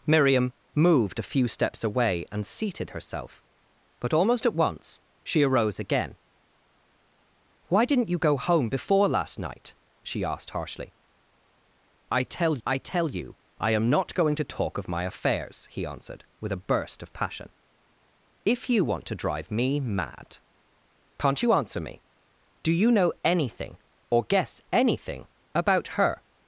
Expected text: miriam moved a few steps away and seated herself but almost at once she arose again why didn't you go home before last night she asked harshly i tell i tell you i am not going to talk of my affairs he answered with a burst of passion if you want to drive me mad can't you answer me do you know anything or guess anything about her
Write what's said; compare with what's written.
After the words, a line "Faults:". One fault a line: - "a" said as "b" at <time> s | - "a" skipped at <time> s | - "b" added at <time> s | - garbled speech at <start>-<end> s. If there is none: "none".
miriam moved a few steps away and seated herself but almost at once she arose again why didn't you go home before last night she asked harshly i tell i tell you i am not going to talk of my affairs he answered with a burst of passion if you want to drive me mad can't you answer me do you know anything or guess anything about her
Faults:
none